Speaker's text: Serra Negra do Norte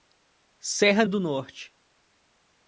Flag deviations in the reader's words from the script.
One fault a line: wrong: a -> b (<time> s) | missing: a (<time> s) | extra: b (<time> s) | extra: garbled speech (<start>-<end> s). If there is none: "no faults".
missing: Negra (1.1 s)